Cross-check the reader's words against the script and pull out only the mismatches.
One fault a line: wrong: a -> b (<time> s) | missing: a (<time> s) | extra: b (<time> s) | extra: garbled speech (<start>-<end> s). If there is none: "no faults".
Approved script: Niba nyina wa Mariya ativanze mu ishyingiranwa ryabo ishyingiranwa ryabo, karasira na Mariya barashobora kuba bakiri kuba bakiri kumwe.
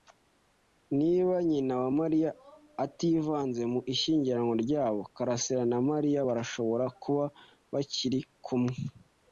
missing: ishyingiranwa ryabo (5.0 s)
missing: kuba bakiri (8.2 s)